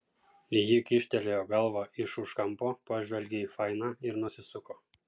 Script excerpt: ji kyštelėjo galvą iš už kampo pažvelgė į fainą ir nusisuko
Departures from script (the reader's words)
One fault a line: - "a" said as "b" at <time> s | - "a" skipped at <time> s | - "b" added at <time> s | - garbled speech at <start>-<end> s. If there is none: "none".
none